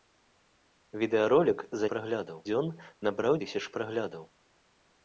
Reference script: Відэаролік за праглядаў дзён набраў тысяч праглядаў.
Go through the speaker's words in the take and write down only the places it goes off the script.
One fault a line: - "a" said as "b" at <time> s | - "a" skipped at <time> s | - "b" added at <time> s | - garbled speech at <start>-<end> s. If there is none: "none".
none